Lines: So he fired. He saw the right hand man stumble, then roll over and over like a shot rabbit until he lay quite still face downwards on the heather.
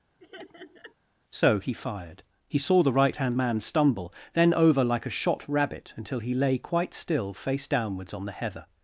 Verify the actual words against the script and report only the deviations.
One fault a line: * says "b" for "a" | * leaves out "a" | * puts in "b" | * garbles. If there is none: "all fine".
* leaves out "roll over and"